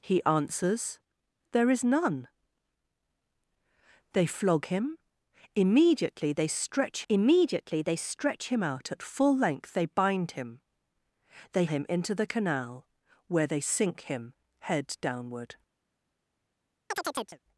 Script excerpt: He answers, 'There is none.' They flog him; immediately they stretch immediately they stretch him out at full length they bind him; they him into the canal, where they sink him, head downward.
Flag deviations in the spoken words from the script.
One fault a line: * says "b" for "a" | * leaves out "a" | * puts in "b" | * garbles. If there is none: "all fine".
all fine